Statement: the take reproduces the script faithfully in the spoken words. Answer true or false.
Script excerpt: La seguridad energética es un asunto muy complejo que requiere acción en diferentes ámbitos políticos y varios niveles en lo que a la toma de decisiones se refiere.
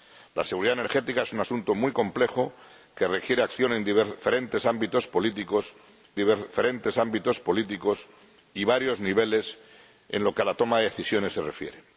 false